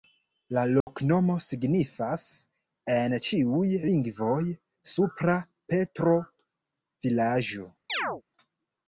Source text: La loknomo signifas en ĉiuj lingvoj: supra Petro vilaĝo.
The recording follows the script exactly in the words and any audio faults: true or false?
false